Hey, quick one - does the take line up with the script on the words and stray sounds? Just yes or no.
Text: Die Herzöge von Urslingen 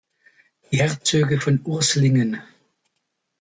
yes